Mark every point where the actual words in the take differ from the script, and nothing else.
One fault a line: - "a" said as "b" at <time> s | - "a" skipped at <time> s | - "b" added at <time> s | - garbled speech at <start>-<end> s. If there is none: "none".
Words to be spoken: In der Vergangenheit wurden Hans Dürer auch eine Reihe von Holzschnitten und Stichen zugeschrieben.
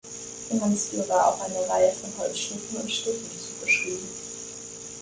- "der Vergangenheit wurden" skipped at 0.6 s